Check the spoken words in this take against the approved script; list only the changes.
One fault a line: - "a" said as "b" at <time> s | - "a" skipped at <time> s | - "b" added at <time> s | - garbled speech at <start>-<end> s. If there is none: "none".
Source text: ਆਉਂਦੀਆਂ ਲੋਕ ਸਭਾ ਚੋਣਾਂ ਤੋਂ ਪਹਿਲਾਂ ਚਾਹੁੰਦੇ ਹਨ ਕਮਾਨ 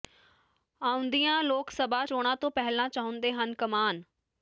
none